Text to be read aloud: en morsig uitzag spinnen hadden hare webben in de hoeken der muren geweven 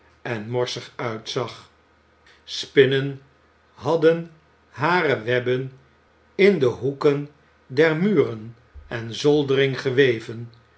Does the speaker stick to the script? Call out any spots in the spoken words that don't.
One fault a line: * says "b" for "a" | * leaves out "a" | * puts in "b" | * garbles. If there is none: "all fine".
* puts in "en zoldering"